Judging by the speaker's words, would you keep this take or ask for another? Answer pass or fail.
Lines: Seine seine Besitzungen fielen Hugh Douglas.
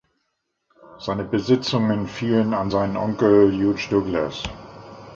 fail